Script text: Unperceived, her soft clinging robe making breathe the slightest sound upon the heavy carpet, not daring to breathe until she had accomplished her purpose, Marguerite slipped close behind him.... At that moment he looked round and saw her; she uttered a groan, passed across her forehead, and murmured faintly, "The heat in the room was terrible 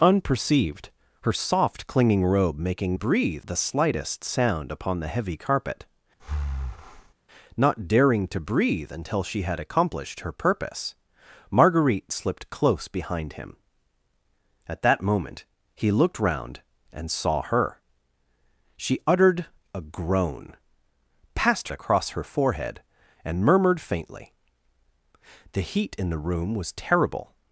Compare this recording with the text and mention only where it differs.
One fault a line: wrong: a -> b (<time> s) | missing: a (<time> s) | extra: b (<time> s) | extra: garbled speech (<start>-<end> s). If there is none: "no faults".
no faults